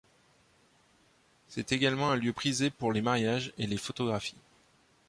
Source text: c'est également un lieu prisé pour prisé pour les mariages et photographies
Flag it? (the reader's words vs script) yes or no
yes